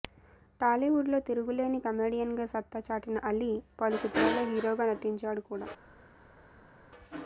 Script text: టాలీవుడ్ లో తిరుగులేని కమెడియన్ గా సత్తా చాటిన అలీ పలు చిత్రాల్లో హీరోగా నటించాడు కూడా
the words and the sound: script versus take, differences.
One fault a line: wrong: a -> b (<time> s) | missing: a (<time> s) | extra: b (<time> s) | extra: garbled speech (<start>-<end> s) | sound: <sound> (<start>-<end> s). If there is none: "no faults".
no faults